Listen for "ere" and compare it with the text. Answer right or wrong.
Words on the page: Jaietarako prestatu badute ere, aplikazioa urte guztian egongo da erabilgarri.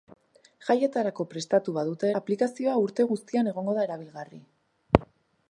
wrong